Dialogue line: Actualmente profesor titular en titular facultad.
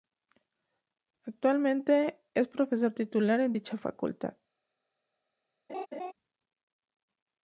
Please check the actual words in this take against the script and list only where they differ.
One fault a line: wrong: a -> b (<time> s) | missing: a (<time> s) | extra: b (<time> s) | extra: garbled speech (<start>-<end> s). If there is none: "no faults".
extra: es (2.3 s)
wrong: titular -> dicha (3.5 s)